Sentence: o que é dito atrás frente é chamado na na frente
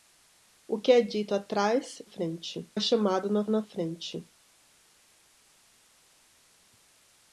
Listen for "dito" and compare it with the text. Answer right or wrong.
right